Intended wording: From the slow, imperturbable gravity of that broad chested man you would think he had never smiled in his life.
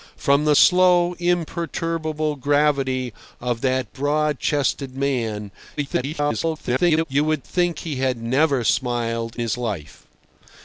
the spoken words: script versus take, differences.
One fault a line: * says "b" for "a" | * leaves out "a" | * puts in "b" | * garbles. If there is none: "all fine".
* garbles
* leaves out "in"